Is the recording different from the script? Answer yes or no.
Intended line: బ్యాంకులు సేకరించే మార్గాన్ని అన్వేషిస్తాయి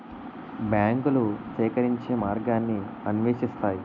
no